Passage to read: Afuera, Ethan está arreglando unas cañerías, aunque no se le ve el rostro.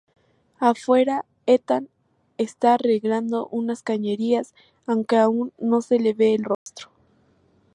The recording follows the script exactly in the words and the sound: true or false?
false